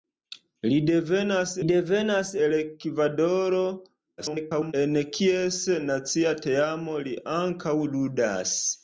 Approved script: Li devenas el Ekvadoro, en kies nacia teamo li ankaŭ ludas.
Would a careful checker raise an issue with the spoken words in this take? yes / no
yes